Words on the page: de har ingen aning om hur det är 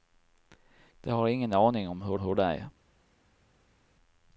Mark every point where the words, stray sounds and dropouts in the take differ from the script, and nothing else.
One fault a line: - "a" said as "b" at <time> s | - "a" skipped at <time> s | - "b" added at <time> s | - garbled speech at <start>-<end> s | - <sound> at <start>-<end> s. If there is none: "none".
- "hur" added at 2.2 s